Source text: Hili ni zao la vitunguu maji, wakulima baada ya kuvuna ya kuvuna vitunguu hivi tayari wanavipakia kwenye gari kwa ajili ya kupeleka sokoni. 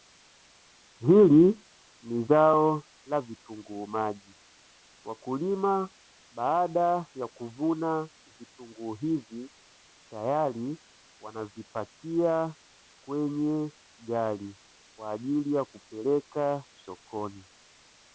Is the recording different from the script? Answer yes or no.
yes